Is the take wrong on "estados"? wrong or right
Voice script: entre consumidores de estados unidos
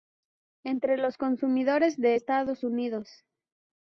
right